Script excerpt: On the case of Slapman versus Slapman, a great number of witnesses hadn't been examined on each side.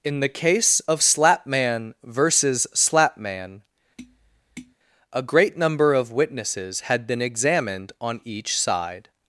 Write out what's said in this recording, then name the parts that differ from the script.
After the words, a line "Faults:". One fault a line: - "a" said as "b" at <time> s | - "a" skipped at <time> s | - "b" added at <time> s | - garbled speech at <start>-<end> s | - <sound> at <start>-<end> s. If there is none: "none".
In the case of Slapman versus Slapman, a great number of witnesses had been examined on each side.
Faults:
- "On" said as "In" at 0.0 s
- tap at 4.0-4.8 s
- "hadn't" said as "had" at 6.8 s